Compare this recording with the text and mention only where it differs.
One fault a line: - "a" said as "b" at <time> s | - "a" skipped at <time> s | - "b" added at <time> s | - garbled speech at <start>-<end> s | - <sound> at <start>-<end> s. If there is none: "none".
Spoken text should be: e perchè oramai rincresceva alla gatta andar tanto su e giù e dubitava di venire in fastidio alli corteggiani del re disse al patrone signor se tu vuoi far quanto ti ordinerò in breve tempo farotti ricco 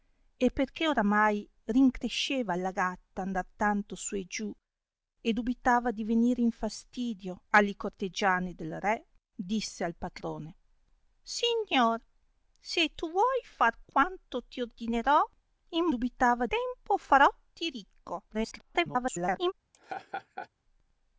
- "breve" said as "dubitava" at 15.9 s
- garbled speech at 18.3-19.5 s
- laugh at 19.7-20.5 s